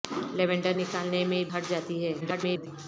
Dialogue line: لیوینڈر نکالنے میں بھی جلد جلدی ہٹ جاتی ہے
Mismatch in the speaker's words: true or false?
true